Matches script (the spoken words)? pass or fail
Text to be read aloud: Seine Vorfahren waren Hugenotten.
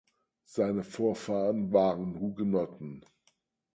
pass